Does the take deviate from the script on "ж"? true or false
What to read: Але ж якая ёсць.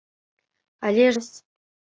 true